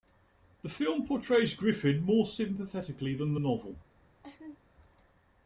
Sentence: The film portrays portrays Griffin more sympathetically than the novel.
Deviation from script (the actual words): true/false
true